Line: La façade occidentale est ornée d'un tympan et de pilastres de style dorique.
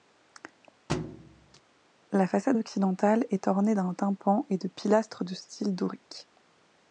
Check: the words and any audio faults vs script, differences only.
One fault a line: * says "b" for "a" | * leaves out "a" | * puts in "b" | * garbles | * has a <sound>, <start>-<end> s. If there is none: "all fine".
* has a thud, 0.9-1.6 s